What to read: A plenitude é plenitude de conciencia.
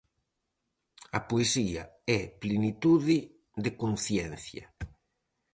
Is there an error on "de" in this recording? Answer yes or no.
no